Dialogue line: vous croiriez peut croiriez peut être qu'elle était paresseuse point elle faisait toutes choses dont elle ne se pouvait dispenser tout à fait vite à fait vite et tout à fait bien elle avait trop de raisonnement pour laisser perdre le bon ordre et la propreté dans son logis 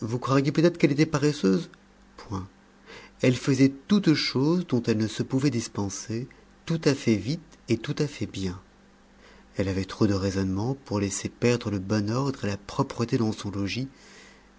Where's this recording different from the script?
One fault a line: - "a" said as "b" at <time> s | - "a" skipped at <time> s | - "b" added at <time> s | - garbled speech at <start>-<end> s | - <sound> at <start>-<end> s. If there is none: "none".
- "croiriez peut" skipped at 0.7 s
- "à fait vite" skipped at 7.6 s